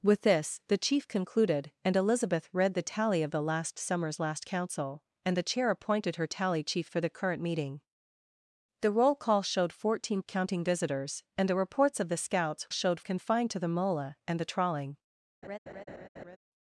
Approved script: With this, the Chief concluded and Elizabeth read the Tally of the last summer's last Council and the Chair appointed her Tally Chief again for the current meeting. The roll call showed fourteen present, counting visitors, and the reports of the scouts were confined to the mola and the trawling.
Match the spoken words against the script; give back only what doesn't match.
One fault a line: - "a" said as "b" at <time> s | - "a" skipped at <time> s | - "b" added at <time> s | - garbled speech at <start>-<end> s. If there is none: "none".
- "again" skipped at 6.9 s
- "present" skipped at 10.2 s
- "were" said as "showed" at 12.7 s